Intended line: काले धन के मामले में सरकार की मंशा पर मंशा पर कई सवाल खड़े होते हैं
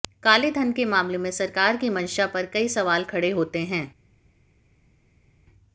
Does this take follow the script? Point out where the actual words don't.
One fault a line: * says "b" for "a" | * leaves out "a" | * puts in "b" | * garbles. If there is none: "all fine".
* leaves out "मंशा पर"